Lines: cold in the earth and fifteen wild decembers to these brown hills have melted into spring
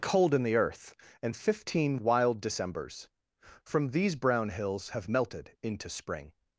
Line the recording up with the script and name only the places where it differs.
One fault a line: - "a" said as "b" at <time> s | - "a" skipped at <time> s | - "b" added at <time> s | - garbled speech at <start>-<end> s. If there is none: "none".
- "to" said as "from" at 3.6 s